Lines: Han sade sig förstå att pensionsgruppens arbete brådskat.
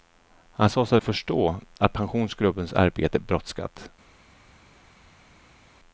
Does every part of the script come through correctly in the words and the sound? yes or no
yes